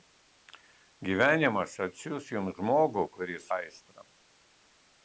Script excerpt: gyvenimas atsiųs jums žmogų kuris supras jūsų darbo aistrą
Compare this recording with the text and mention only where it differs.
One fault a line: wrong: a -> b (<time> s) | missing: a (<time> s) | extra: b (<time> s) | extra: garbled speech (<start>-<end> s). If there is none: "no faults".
missing: supras jūsų darbo (3.5 s)